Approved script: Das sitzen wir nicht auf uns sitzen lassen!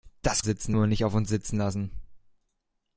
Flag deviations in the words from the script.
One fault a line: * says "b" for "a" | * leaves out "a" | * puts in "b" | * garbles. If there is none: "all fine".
all fine